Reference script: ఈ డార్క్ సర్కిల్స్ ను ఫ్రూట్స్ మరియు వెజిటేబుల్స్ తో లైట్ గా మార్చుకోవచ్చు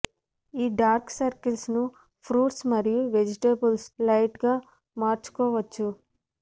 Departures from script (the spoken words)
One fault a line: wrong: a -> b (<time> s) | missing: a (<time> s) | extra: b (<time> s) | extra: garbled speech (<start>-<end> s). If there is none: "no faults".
missing: తో (3.9 s)